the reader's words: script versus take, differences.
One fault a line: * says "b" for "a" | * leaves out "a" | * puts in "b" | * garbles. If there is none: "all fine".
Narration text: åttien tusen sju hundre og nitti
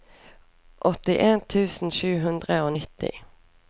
all fine